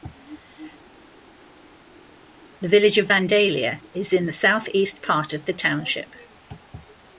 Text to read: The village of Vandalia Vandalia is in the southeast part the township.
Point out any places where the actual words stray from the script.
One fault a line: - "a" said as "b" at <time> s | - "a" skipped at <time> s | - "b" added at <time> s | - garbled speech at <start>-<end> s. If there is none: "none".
- "Vandalia" skipped at 3.8 s
- "of" added at 5.3 s